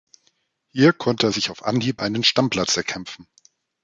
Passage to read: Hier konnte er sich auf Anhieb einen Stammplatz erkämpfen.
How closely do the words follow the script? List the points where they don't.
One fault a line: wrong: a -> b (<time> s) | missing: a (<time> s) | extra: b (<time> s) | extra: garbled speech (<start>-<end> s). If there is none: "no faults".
no faults